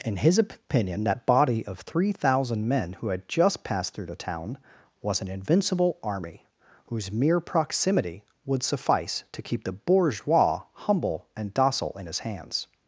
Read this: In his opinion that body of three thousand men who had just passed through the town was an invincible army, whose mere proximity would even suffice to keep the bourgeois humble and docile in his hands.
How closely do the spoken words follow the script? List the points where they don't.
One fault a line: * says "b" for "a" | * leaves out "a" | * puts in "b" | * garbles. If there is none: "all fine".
* leaves out "even"